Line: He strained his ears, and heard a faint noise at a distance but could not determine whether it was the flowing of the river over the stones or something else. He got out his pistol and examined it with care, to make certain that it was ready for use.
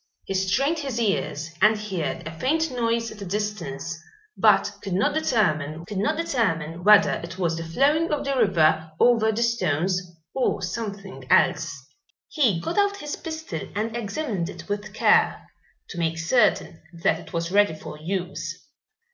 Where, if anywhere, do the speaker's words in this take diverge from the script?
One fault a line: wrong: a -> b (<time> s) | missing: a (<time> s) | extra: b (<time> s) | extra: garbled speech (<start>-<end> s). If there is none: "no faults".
extra: could not determine (5.9 s)